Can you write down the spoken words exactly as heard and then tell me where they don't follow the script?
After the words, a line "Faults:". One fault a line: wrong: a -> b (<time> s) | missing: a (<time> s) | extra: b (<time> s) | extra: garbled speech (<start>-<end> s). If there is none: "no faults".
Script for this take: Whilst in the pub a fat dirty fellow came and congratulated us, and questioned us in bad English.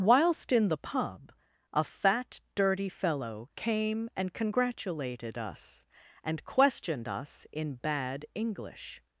Whilst in the pub a fat dirty fellow came and congratulated us, and questioned us in bad English.
Faults:
no faults